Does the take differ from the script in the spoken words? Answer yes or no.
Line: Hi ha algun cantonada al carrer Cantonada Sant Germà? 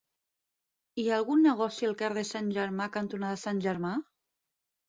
yes